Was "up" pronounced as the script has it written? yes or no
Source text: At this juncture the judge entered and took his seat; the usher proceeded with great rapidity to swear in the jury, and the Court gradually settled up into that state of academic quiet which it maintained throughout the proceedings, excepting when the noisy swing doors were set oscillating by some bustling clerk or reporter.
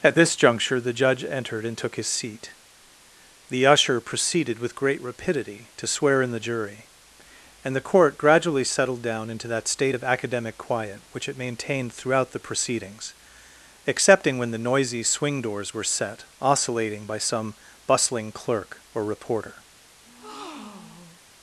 no